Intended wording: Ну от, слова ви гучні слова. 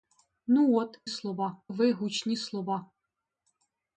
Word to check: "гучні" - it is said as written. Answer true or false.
true